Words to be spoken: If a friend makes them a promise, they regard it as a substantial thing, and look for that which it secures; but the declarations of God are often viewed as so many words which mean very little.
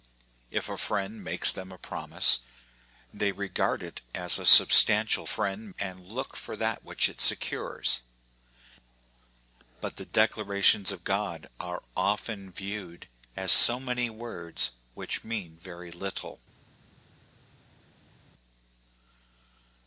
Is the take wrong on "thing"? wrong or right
wrong